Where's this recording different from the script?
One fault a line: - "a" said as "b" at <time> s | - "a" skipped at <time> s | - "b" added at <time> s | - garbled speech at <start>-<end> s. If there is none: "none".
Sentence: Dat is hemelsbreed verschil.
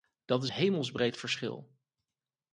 none